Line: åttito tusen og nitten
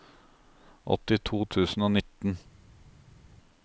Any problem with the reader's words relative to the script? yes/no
no